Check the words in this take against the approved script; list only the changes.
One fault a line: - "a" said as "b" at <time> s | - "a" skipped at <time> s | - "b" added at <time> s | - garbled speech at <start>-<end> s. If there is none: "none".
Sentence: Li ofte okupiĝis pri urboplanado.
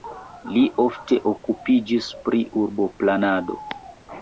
none